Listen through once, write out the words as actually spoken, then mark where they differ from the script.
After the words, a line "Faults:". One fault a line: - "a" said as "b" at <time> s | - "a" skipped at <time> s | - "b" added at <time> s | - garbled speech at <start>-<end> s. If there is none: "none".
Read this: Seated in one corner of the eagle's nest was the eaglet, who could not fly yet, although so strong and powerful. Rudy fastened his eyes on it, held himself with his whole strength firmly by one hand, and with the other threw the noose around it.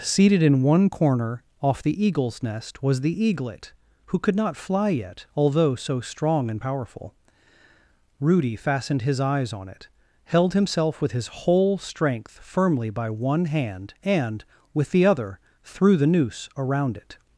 Seated in one corner off the eagle's nest was the eaglet, who could not fly yet, although so strong and powerful. Rudy fastened his eyes on it, held himself with his whole strength firmly by one hand, and with the other threw the noose around it.
Faults:
- "of" said as "off" at 1.6 s